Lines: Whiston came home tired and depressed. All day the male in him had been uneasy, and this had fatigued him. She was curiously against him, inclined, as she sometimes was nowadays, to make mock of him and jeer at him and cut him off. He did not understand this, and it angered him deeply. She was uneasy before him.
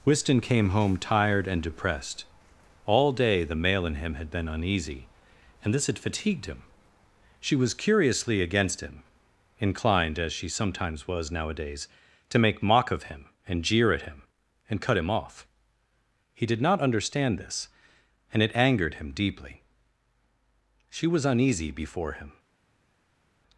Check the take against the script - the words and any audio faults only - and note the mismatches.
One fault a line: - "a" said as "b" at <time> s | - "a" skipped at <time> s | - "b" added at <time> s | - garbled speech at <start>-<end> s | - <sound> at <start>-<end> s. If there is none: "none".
none